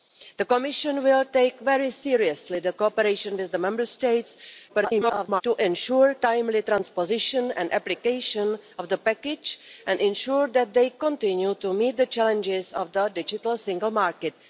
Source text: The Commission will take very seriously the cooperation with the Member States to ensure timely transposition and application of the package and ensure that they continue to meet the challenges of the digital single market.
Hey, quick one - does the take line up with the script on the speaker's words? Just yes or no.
no